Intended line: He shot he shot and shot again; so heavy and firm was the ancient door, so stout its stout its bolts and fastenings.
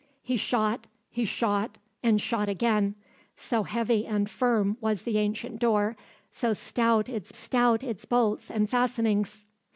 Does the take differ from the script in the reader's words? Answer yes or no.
no